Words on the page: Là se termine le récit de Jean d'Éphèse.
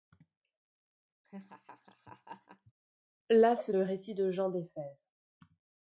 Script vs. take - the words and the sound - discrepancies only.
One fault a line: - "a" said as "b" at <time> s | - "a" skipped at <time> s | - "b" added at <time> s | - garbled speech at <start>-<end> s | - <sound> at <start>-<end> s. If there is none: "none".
- laugh at 1.2-2.7 s
- "termine" skipped at 3.7 s